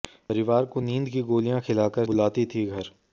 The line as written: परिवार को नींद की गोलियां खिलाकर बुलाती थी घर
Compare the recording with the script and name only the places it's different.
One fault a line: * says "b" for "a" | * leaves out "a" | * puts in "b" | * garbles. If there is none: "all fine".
all fine